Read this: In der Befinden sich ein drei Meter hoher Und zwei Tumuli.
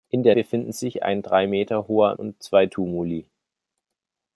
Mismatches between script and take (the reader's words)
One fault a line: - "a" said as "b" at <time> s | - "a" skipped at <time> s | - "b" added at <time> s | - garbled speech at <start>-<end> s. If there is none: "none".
none